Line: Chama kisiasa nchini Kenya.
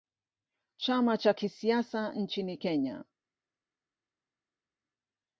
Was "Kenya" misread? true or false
false